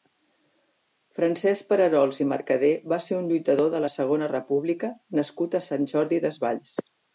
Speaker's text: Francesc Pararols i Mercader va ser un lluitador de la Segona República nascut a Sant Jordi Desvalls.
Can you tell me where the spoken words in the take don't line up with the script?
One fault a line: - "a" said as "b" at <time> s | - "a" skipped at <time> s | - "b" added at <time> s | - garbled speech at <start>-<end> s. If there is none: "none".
none